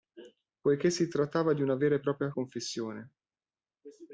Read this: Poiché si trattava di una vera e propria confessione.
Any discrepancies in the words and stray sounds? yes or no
no